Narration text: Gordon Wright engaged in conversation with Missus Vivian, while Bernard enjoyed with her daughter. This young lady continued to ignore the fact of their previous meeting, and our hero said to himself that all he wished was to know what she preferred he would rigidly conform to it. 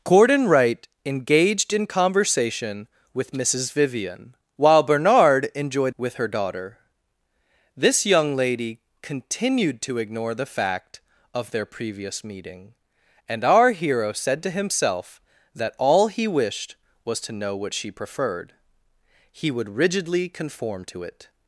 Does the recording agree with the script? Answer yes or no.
yes